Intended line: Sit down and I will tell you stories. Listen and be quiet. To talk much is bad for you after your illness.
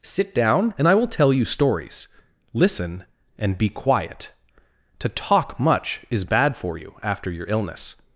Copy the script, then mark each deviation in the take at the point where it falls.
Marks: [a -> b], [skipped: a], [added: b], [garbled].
Sit down and I will tell you stories. Listen and be quiet. To talk much is bad for you after your illness.